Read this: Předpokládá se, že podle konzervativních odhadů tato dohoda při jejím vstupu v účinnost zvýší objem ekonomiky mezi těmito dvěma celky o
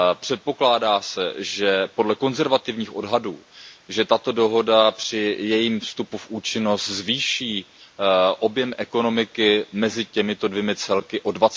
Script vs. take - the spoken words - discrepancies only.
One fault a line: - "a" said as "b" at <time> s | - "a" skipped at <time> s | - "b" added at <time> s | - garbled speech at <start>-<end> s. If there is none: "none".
none